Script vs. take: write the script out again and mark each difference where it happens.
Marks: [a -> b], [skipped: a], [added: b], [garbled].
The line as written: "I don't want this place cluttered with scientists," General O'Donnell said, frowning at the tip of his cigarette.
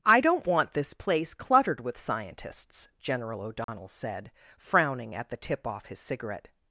"I don't want this place cluttered with scientists," General O'Donnell said, frowning at the tip [of -> off] his cigarette.